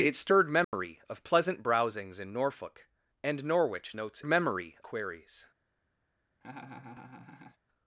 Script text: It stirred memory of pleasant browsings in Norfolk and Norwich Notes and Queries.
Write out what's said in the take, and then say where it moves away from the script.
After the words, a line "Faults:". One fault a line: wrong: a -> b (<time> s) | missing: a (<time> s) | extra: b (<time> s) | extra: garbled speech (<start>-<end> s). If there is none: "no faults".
It stirred memory of pleasant browsings in Norfolk and Norwich Notes memory Queries.
Faults:
wrong: and -> memory (4.3 s)